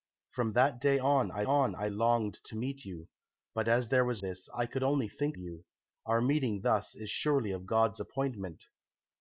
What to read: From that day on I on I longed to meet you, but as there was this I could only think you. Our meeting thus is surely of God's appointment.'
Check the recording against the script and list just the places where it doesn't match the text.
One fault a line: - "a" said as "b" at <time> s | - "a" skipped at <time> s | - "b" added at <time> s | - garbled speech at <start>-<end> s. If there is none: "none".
none